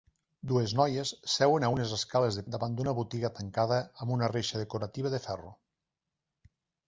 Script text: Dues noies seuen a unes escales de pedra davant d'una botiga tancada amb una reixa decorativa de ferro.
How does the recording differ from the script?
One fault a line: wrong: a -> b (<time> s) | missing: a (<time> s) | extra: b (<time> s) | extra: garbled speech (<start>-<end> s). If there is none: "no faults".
missing: pedra (2.5 s)